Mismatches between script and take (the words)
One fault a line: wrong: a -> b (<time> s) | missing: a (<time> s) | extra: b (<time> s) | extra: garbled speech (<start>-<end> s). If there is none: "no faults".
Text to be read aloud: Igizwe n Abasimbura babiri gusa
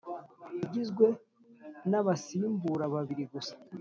no faults